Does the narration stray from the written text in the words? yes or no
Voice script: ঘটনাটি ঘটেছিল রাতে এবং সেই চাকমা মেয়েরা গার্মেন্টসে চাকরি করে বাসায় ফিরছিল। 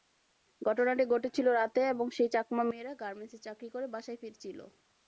no